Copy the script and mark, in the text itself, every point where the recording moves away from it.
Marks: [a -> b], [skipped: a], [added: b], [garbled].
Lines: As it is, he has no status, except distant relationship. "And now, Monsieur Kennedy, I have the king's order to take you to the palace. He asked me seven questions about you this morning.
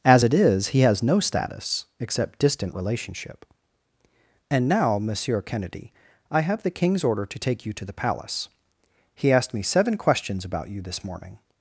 As it is, he has no status, except distant relationship. "And now, Monsieur Kennedy, I have the king's order to take you to the palace. He asked me seven questions about you this morning.